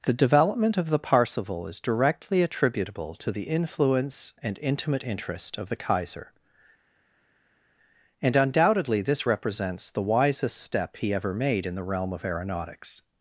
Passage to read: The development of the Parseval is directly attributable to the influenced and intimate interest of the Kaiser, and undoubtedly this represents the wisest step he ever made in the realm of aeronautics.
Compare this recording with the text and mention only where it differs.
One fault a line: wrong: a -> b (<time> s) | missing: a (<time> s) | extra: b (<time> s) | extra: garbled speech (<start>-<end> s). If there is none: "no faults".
wrong: influenced -> influence (3.4 s)